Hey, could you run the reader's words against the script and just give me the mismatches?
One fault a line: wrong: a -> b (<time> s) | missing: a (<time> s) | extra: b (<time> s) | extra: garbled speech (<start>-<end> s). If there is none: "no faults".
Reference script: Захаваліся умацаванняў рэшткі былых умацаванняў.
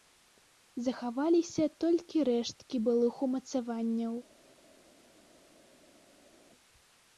wrong: умацаванняў -> толькі (1.9 s)